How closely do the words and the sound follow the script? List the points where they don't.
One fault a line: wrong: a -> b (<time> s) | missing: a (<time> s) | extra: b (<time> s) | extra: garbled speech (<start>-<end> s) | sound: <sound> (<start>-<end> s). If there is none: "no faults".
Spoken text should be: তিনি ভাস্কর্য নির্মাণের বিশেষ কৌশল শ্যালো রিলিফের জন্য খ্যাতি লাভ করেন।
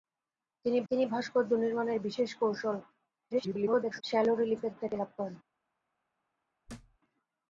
extra: তিনি (0.9 s)
extra: garbled speech (3.3-4.0 s)
missing: জন্য (4.7 s)
sound: thud (6.7-7.0 s)